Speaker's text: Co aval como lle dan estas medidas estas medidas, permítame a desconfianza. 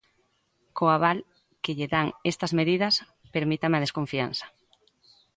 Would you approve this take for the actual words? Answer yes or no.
no